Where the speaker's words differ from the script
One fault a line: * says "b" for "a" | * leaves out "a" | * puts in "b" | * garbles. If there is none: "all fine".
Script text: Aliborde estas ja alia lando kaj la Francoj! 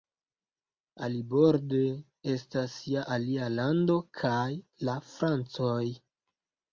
all fine